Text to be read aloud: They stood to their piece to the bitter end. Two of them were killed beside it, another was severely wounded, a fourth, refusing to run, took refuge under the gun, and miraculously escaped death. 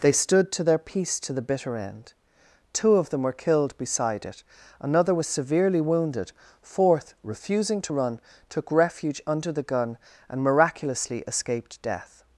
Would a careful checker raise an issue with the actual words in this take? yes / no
yes